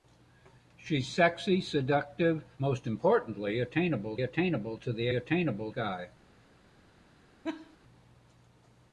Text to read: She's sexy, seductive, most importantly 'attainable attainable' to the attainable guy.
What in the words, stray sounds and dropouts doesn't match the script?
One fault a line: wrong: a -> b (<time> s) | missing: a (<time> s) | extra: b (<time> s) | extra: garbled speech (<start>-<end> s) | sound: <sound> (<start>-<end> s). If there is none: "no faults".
sound: laugh (7.4-7.8 s)